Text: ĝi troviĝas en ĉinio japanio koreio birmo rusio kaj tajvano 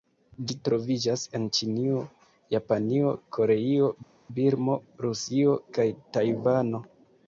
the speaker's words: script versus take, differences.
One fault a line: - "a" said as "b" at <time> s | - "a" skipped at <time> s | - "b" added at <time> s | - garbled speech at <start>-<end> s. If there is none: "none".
none